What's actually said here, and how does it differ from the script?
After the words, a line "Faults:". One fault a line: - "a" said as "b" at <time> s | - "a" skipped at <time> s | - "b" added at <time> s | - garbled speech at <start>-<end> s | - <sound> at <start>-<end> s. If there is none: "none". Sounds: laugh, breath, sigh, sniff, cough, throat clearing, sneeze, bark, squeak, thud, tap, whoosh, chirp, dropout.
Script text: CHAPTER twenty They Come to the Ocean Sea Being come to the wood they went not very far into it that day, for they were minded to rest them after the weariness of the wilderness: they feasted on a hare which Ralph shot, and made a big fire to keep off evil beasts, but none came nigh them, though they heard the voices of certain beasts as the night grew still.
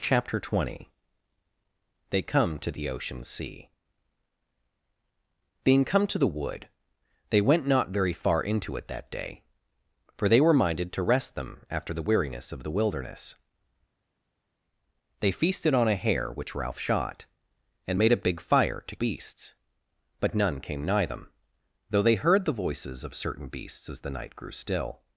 CHAPTER twenty They Come to the Ocean Sea Being come to the wood they went not very far into it that day, for they were minded to rest them after the weariness of the wilderness: they feasted on a hare which Ralph shot, and made a big fire to beasts, but none came nigh them, though they heard the voices of certain beasts as the night grew still.
Faults:
- "keep off evil" skipped at 18.9 s